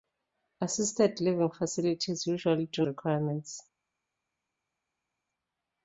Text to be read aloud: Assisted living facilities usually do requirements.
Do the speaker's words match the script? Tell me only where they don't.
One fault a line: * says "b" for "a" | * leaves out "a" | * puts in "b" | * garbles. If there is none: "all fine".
all fine